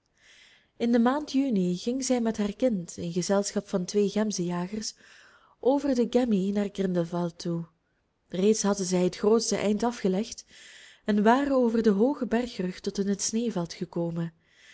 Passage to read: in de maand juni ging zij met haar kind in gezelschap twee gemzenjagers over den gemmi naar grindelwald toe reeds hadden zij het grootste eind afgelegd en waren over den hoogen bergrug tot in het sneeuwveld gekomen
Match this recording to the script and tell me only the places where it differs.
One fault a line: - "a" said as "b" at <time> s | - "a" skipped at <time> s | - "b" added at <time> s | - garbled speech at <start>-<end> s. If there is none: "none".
- "van" added at 3.7 s